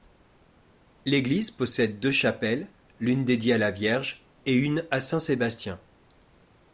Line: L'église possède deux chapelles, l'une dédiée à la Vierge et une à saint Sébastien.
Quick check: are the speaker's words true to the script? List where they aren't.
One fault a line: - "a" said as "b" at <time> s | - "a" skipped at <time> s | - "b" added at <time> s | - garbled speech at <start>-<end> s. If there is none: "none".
none